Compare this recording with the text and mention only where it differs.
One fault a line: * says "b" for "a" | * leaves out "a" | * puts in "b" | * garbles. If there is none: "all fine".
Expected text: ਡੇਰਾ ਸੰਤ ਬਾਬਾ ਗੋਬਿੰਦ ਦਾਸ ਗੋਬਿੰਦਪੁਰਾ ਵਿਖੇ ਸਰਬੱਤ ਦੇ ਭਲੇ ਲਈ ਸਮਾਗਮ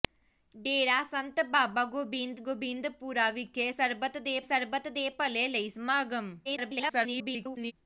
* leaves out "ਦਾਸ"
* puts in "ਸਰਬੱਤ ਦੇ"
* garbles